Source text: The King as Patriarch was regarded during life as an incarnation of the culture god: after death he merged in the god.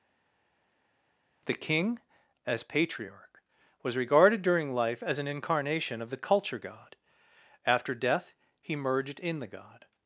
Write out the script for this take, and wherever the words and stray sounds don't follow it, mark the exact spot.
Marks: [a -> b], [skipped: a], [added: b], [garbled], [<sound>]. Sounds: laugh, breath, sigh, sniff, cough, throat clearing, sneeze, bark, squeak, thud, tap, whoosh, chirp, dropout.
The King as Patriarch was regarded during life as an incarnation of the culture god: after death he merged in the god.